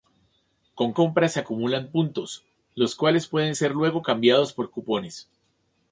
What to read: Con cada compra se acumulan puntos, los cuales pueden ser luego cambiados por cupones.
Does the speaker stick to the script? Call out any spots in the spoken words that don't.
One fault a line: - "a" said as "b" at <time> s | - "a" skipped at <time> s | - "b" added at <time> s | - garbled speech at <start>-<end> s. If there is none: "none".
- "cada" skipped at 0.9 s